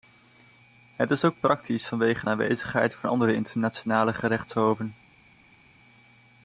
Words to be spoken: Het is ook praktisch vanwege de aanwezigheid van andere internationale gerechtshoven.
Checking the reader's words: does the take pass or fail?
pass